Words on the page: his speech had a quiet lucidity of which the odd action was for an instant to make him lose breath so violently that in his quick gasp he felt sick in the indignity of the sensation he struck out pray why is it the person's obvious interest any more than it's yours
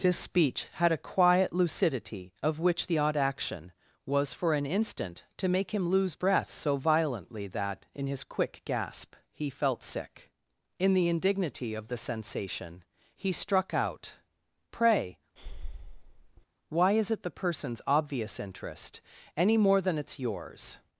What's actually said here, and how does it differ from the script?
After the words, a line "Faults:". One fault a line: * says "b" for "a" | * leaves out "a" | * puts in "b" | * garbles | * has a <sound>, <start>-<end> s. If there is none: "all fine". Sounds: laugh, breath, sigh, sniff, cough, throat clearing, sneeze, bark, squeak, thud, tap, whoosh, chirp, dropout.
his speech had a quiet lucidity of which the odd action was for an instant to make him lose breath so violently that in his quick gasp he felt sick in the indignity of the sensation he struck out pray why is it the person's obvious interest any more than it's yours
Faults:
* has a breath, 15.4-16.5 s